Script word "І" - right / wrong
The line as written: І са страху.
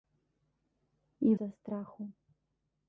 right